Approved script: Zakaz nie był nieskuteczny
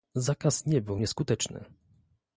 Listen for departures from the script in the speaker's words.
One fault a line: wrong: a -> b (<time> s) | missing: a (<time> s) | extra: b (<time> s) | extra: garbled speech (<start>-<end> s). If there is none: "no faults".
no faults